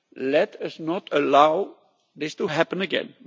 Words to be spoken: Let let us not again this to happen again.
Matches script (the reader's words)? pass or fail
fail